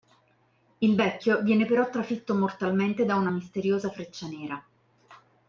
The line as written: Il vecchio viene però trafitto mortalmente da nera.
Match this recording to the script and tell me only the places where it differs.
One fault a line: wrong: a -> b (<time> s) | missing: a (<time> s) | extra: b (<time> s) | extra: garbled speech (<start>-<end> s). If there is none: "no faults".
extra: una misteriosa freccia (3.2 s)